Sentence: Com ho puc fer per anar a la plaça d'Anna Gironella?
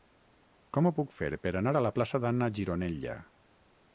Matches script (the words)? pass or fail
pass